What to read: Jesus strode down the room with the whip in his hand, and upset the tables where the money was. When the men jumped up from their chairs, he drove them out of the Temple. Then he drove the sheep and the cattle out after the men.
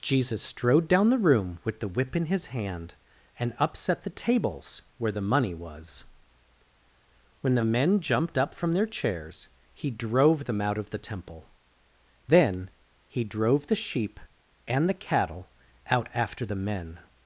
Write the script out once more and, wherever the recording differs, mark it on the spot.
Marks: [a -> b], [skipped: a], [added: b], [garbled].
Jesus strode down the room with the whip in his hand, and upset the tables where the money was. When the men jumped up from their chairs, he drove them out of the Temple. Then he drove the sheep and the cattle out after the men.